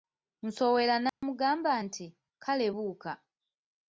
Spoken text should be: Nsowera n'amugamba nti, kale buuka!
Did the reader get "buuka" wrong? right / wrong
right